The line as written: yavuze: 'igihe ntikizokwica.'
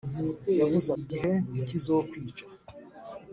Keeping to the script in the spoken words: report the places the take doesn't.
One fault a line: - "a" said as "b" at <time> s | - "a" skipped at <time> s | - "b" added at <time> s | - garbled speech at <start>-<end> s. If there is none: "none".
none